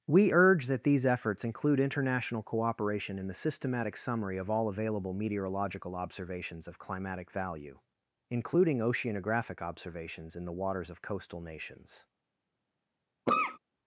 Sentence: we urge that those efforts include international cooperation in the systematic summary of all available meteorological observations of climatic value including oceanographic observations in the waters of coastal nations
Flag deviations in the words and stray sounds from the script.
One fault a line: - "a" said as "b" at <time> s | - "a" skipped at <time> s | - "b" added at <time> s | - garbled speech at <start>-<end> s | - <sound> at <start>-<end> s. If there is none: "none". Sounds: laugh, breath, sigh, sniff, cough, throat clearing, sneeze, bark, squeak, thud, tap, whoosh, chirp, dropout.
- "those" said as "these" at 0.9 s
- cough at 13.3-13.6 s